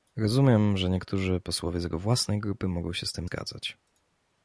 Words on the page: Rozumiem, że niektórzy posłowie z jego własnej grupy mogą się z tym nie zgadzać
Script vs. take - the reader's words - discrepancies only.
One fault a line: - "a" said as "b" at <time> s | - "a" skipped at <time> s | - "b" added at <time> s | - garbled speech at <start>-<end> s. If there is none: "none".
- "nie" skipped at 3.3 s